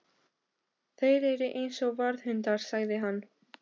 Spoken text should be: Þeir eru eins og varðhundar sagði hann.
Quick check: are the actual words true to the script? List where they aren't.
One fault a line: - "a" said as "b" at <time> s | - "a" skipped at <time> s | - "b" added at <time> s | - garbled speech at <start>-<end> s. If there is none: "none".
none